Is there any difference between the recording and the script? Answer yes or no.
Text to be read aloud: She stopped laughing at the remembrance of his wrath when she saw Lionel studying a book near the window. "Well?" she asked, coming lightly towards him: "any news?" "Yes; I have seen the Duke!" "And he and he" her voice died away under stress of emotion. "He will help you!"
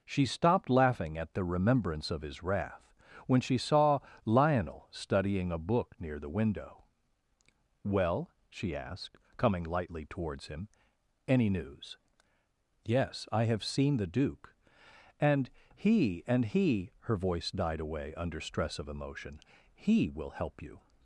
no